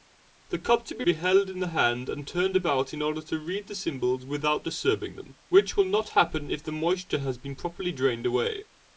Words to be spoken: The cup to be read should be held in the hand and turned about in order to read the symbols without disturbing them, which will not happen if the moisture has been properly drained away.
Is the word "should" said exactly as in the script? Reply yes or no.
no